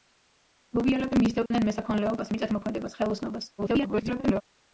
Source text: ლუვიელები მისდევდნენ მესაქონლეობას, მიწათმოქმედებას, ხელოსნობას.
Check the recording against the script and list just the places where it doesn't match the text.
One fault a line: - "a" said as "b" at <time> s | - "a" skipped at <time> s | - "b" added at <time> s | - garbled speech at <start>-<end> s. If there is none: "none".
- garbled speech at 3.6-4.4 s